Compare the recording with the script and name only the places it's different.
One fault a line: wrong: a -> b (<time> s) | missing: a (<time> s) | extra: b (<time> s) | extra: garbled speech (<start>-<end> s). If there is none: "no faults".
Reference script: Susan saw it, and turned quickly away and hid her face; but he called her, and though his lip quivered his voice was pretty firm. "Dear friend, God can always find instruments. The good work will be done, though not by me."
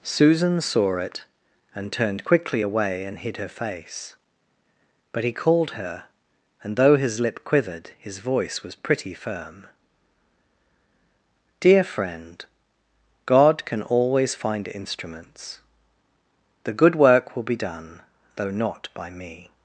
no faults